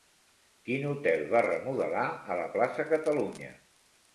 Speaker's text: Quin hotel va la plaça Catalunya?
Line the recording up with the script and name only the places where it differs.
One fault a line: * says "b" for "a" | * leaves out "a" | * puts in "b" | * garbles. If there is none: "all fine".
* puts in "remodelar a"